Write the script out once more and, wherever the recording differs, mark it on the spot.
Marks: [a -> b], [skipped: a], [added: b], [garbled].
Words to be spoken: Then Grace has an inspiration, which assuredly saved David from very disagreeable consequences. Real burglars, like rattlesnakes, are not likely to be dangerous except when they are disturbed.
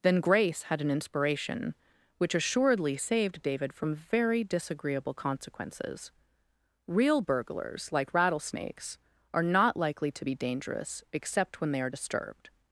Then Grace [has -> had] an inspiration, which assuredly saved David from very disagreeable consequences. Real burglars, like rattlesnakes, are not likely to be dangerous except when they are disturbed.